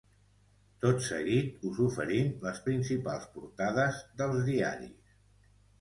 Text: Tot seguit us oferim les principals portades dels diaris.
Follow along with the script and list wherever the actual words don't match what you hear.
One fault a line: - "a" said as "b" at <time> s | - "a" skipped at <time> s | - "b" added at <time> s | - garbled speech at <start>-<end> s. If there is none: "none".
none